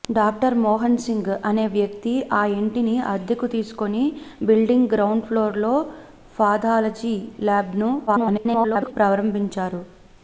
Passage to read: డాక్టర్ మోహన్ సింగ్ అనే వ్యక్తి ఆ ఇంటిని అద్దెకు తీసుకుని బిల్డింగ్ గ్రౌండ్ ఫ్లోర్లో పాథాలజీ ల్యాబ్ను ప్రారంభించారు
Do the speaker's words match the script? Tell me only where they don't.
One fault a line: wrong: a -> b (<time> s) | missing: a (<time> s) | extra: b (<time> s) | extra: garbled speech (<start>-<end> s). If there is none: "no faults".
extra: garbled speech (8.1-8.9 s)